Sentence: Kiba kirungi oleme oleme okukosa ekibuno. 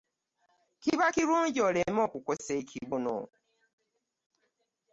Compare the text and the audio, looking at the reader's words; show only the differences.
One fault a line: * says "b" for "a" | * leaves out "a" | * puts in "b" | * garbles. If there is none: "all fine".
* leaves out "oleme"